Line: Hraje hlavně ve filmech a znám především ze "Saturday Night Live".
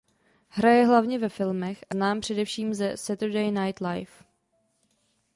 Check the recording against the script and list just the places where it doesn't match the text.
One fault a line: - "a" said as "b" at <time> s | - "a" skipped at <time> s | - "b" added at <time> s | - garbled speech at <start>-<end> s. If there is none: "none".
none